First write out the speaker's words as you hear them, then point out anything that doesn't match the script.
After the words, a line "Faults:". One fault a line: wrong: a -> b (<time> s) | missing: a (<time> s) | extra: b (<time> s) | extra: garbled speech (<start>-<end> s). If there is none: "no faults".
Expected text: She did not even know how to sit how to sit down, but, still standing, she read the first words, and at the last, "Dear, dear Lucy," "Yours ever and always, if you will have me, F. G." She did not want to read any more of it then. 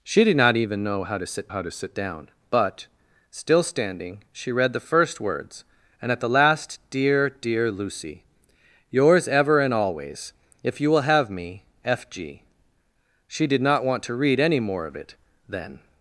She did not even know how to sit how to sit down, but, still standing, she read the first words, and at the last, "Dear, dear Lucy," "Yours ever and always, if you will have me, F. G." She did not want to read any more of it then.
Faults:
no faults